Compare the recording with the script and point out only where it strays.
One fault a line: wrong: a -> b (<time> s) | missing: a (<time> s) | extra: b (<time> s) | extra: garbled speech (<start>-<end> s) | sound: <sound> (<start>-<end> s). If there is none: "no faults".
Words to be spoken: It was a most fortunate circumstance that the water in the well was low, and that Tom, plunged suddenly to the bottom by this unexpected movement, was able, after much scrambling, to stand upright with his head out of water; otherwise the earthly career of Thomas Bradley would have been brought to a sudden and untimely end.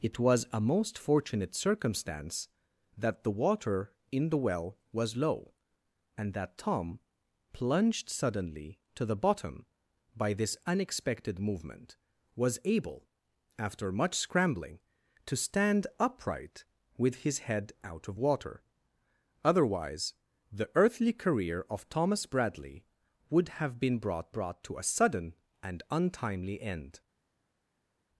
extra: brought (24.3 s)